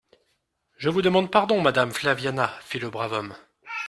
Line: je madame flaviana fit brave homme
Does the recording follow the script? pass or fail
fail